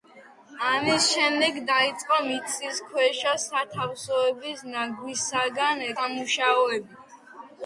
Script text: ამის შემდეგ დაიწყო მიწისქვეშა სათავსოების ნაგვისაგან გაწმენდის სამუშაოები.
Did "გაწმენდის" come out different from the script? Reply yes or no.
yes